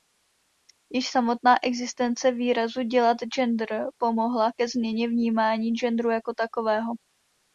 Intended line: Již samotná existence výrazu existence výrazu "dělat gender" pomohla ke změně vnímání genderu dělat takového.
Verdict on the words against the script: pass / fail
fail